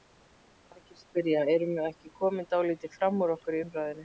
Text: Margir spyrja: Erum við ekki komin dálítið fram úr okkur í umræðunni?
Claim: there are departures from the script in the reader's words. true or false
false